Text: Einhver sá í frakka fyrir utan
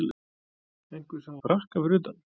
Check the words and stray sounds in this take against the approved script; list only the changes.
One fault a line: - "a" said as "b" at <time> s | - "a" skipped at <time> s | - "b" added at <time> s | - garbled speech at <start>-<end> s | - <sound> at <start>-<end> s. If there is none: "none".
none